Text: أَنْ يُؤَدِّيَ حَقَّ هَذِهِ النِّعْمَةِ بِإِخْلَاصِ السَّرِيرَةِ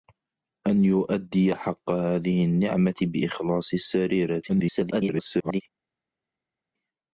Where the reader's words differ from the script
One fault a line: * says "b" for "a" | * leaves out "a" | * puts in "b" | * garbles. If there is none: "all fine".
* garbles